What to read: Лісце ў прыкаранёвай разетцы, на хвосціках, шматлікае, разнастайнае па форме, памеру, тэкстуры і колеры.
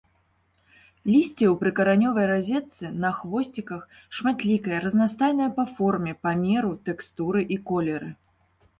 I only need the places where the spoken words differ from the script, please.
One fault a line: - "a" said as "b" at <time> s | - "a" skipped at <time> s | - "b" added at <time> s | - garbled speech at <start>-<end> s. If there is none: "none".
none